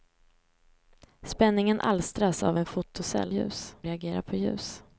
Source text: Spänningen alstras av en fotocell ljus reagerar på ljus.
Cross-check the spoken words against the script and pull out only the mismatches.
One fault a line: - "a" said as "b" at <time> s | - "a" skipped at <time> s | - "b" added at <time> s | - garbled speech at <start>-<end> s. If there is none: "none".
none